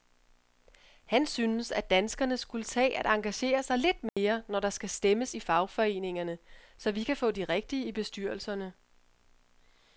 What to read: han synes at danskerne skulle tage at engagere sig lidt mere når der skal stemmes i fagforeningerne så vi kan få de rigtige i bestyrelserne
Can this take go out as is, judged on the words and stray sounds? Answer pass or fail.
fail